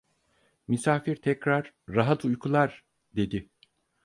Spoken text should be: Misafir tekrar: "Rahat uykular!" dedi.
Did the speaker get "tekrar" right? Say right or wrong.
right